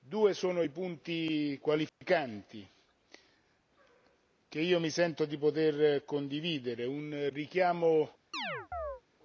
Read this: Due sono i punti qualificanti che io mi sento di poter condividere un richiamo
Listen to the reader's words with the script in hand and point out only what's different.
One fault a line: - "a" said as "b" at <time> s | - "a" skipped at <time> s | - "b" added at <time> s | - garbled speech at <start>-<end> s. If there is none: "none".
none